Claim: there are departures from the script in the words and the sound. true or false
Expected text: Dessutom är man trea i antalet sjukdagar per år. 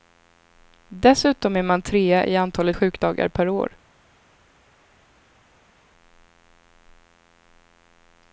false